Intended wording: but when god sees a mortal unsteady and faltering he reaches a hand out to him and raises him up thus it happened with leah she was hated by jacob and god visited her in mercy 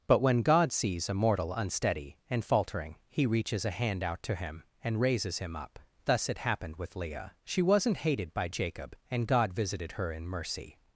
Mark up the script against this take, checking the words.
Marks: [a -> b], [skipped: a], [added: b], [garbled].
but when god sees a mortal unsteady and faltering he reaches a hand out to him and raises him up thus it happened with leah she [was -> wasn't] hated by jacob and god visited her in mercy